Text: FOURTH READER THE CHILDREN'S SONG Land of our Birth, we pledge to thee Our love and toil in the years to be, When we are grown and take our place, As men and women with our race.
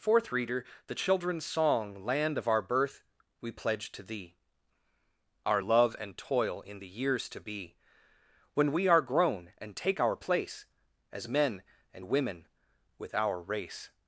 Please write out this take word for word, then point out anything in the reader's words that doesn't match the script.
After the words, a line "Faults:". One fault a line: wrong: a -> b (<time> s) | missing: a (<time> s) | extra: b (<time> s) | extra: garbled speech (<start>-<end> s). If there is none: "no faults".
FOURTH READER THE CHILDREN'S SONG Land of our Birth, we pledge to thee Our love and toil in the years to be, When we are grown and take our place, As men and women with our race.
Faults:
no faults